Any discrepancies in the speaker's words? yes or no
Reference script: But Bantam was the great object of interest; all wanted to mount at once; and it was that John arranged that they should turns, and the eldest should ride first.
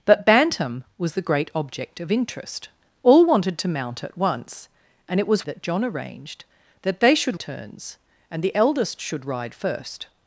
no